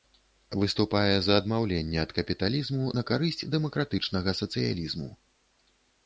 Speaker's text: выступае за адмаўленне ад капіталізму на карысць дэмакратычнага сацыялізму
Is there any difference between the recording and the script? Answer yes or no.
no